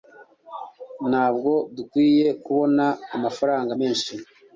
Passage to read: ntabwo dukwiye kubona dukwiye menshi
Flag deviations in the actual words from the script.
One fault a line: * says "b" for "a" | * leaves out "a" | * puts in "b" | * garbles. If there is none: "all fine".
* says "amafaranga" for "dukwiye"